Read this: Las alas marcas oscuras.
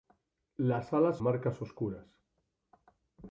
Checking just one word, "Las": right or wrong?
right